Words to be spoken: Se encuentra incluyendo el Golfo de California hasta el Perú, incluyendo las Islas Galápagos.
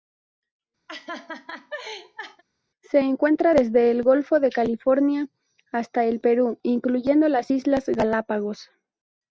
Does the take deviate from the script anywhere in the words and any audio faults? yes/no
yes